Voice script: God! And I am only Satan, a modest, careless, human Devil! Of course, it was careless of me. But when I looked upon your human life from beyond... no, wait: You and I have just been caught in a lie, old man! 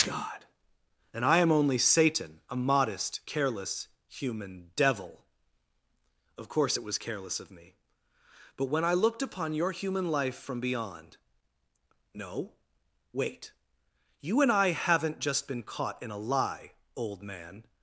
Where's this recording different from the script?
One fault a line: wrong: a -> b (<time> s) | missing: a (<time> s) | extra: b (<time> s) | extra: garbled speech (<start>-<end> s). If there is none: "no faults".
wrong: have -> haven't (14.7 s)